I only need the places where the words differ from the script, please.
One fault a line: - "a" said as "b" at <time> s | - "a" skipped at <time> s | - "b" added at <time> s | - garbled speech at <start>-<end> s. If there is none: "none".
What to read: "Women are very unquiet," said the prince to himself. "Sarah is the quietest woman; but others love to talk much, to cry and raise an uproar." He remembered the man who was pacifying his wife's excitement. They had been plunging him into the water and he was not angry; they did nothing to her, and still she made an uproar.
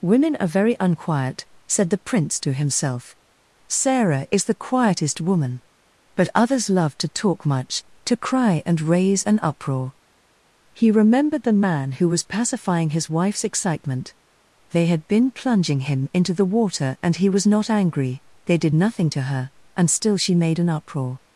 none